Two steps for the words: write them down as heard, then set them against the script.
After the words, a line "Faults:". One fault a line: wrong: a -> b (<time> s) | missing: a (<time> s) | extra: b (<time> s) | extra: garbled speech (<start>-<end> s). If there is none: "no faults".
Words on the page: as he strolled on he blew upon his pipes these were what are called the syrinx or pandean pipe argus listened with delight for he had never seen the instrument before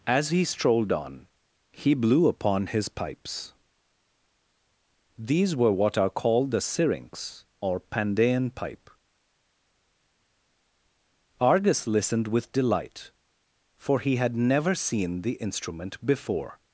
as he strolled on he blew upon his pipes these were what are called the syrinx or pandean pipe argus listened with delight for he had never seen the instrument before
Faults:
no faults